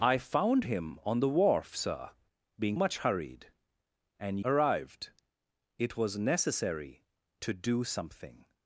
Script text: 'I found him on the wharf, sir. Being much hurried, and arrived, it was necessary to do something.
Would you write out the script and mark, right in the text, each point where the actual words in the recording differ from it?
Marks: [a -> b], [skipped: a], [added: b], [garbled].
'I found him on the wharf, sir. Being much hurried, and arrived, it was necessary to do something.